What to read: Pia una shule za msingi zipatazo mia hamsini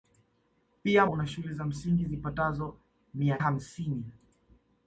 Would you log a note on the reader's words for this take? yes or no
no